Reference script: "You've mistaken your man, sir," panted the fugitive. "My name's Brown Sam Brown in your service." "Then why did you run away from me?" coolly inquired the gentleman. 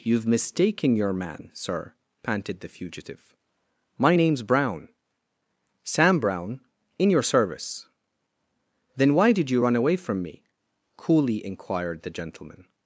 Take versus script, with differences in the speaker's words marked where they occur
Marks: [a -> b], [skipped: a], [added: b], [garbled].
"You've mistaken your man, sir," panted the fugitive. "My name's Brown Sam Brown in your service." "Then why did you run away from me?" coolly inquired the gentleman.